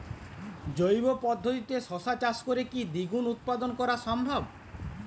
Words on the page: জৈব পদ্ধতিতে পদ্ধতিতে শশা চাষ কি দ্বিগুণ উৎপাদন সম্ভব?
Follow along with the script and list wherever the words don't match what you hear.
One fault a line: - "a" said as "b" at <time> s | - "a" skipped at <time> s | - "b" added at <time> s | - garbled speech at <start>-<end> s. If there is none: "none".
- "পদ্ধতিতে" skipped at 1.8 s
- "করে" added at 2.4 s
- "করা" added at 3.7 s